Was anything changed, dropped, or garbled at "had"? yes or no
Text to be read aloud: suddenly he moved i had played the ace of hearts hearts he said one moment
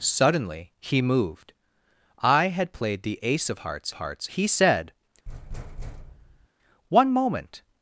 no